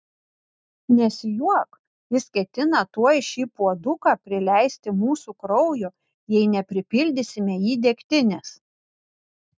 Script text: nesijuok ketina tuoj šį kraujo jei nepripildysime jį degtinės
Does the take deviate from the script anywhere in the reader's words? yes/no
yes